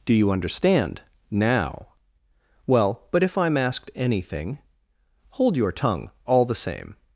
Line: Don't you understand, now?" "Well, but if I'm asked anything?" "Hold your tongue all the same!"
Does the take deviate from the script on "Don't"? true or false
true